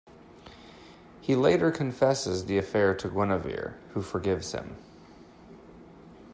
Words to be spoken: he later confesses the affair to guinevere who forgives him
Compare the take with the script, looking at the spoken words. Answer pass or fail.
pass